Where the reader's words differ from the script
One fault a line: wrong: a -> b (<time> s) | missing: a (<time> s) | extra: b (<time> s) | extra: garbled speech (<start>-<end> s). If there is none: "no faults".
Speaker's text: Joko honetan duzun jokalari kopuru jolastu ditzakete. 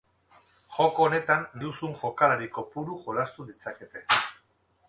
no faults